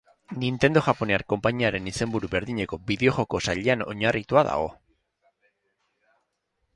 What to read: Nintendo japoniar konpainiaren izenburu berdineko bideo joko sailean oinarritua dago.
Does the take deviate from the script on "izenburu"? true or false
false